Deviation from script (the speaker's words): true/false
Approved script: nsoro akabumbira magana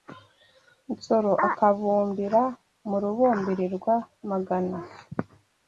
true